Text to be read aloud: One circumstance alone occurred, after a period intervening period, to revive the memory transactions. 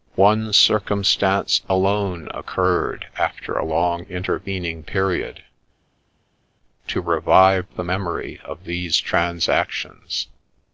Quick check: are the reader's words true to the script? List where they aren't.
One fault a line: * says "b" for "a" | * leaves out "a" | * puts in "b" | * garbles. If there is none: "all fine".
* says "long" for "period"
* puts in "of these"